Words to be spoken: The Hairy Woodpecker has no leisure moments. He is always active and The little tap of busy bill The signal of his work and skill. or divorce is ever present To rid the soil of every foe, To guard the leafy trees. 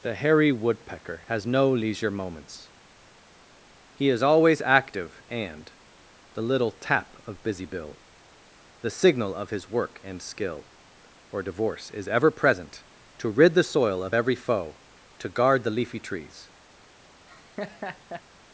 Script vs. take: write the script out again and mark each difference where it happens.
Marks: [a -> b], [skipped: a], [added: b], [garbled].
The Hairy Woodpecker has no leisure moments. He is always active and The little tap of busy bill The signal of his work and skill. or divorce is ever present To rid the soil of every foe, To guard the leafy trees.